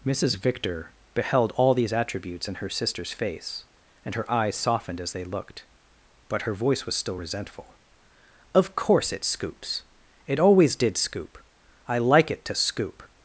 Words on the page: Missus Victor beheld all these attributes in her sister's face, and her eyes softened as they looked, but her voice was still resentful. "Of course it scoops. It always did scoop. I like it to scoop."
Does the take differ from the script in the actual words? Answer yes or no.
no